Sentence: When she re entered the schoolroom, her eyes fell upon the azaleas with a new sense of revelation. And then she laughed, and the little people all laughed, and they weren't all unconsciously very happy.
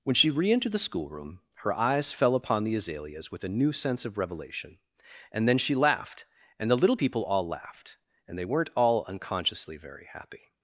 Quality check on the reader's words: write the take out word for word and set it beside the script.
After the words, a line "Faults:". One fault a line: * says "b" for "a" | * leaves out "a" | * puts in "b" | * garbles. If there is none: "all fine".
When she re entered the schoolroom, her eyes fell upon the azaleas with a new sense of revelation. And then she laughed, and the little people all laughed, and they weren't all unconsciously very happy.
Faults:
all fine